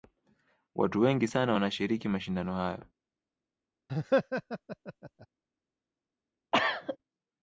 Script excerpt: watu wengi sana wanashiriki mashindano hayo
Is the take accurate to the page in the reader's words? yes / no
yes